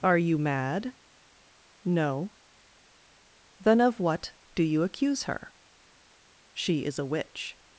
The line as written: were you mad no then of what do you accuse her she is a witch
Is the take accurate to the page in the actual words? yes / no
no